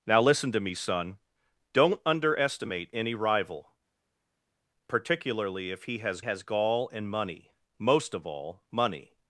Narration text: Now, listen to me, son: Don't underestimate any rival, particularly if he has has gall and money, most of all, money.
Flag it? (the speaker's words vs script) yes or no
no